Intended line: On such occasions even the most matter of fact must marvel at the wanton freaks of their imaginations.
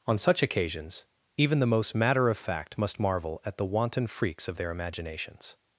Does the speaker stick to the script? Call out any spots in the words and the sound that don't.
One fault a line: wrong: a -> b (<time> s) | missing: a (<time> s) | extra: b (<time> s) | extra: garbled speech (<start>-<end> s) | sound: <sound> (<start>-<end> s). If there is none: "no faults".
no faults